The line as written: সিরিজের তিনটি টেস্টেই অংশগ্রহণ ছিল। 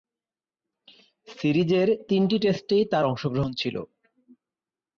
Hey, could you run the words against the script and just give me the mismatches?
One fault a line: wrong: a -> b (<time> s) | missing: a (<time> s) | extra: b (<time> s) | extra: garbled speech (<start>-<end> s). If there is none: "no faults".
extra: তার (2.9 s)